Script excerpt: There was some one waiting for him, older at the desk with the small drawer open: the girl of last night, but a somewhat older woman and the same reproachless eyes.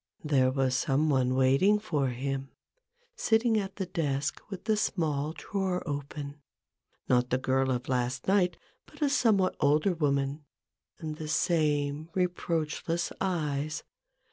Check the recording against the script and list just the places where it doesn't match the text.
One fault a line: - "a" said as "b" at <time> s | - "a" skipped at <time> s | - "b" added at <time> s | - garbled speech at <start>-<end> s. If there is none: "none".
- "older" said as "sitting" at 3.1 s
- "not" added at 7.1 s